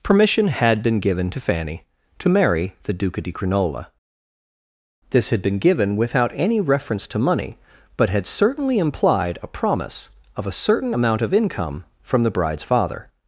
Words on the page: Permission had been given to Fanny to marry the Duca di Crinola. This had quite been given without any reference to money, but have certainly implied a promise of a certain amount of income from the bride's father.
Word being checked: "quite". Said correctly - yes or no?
no